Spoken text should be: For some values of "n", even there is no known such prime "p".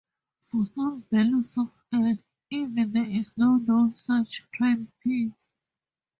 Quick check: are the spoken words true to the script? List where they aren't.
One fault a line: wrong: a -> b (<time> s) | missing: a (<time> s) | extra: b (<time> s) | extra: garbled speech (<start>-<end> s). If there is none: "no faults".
no faults